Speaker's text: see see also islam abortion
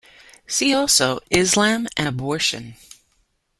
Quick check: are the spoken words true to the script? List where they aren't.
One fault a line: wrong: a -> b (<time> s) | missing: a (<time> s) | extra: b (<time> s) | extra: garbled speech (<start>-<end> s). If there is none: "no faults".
missing: see (0.7 s)
extra: and (2.0 s)